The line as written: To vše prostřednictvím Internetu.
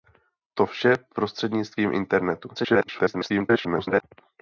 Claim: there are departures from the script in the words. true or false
true